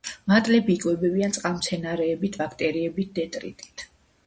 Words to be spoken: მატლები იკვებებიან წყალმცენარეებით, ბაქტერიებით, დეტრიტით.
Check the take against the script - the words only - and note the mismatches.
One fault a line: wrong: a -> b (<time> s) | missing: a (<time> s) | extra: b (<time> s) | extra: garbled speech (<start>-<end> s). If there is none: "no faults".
no faults